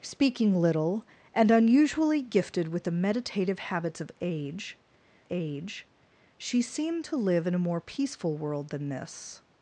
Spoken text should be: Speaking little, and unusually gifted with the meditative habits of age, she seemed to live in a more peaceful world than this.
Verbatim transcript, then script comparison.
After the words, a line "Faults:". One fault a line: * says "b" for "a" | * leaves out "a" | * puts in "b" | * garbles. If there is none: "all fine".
Speaking little, and unusually gifted with the meditative habits of age age, she seemed to live in a more peaceful world than this.
Faults:
* puts in "age"